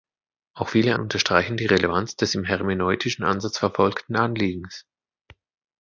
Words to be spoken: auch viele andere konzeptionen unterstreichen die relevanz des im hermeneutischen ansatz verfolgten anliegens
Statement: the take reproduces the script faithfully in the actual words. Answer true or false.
false